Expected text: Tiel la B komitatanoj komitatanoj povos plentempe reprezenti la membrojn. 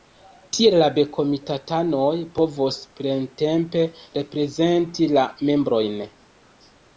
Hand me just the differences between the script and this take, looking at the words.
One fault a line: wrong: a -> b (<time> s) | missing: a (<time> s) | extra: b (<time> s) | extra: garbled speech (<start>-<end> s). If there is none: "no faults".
missing: komitatanoj (2.1 s)